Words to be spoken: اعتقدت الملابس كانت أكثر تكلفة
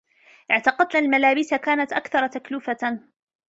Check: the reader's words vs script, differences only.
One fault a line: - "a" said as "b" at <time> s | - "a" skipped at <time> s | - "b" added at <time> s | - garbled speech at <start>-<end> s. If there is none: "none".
none